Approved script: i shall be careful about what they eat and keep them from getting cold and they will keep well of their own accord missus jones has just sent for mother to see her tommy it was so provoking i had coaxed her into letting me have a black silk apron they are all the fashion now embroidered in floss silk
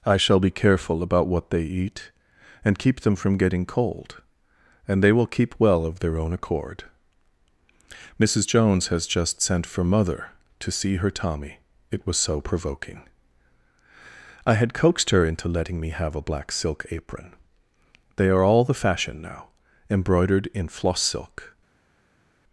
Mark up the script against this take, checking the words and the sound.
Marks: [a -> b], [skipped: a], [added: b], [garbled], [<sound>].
i shall be careful about what they eat and keep them from getting cold and they will keep well of their own accord missus jones has just sent for mother to see her tommy it was so provoking i had coaxed her into letting me have a black silk apron they are all the fashion now embroidered in floss silk